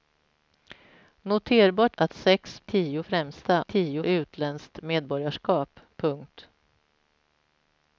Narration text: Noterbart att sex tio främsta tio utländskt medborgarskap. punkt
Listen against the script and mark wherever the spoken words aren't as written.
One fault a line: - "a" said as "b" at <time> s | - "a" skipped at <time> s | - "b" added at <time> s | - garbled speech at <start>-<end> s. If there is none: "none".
none